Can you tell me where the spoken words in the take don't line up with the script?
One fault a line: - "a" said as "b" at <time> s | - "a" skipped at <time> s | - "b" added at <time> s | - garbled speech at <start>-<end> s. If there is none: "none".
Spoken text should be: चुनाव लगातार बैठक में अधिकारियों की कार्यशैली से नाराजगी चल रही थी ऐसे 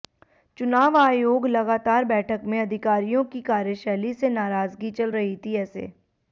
- "आयोग" added at 1.0 s